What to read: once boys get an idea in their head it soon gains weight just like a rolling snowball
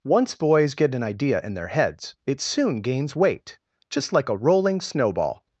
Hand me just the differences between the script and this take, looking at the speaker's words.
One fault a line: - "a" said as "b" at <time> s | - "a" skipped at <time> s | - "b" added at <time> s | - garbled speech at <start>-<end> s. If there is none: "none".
- "head" said as "heads" at 1.7 s